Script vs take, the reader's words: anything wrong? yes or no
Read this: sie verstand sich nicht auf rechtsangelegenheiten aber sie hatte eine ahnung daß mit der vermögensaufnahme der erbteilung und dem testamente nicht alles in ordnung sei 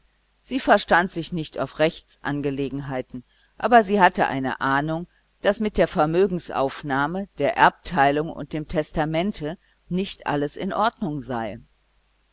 no